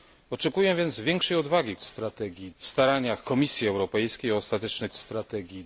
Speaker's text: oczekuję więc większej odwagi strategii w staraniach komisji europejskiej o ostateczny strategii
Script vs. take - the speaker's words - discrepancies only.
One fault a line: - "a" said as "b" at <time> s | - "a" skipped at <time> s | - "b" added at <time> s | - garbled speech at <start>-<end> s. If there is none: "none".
none